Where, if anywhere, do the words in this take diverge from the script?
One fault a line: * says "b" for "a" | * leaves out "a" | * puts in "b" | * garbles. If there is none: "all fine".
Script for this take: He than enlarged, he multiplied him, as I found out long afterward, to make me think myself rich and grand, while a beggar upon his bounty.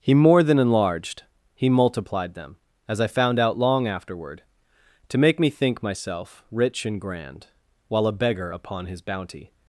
* puts in "more"
* says "them" for "him"